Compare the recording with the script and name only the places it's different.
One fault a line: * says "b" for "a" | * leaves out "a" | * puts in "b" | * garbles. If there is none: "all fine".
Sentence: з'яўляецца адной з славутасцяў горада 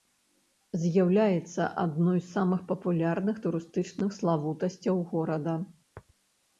* puts in "самых папулярных турыстычных"